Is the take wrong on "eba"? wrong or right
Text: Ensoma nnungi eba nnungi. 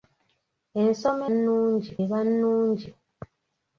right